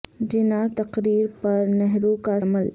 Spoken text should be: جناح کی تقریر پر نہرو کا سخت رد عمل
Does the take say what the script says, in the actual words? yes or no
no